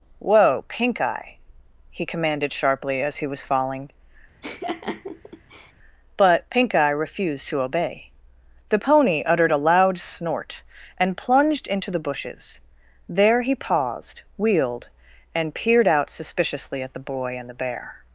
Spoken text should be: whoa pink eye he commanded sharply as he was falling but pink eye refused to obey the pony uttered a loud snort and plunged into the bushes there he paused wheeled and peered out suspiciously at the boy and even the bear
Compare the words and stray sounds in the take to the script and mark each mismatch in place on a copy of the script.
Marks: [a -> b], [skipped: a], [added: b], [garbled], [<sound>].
whoa pink eye he commanded sharply as he was falling [laugh] but pink eye refused to obey the pony uttered a loud snort and plunged into the bushes there he paused wheeled and peered out suspiciously at the boy and [skipped: even] the bear